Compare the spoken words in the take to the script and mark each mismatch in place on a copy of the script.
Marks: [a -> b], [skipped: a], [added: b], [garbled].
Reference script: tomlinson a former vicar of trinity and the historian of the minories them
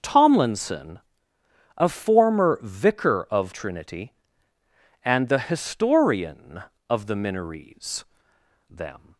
tomlinson a former vicar of trinity and the historian of the minories them